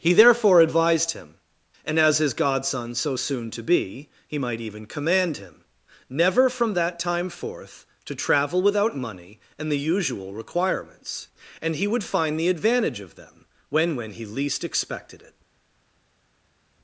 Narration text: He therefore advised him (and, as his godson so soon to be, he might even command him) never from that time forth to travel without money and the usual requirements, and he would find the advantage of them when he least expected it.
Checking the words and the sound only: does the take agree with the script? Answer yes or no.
no